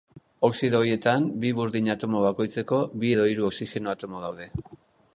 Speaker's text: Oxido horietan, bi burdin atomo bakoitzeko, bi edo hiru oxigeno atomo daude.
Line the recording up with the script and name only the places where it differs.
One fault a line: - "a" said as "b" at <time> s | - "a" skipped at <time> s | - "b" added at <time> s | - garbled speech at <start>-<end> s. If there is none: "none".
none